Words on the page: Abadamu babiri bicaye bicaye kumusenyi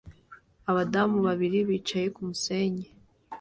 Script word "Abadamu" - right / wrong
right